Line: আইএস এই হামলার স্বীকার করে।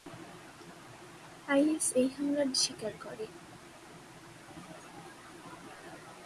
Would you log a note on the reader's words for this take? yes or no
no